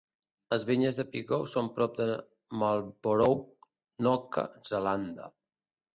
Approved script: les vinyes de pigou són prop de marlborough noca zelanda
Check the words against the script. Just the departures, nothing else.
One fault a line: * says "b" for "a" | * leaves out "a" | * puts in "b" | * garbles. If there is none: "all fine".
all fine